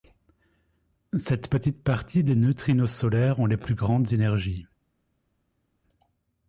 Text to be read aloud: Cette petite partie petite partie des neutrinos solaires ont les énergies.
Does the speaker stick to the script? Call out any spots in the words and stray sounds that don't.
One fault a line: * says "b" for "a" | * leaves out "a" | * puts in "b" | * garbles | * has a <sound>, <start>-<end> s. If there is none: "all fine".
* leaves out "petite partie"
* puts in "plus grandes"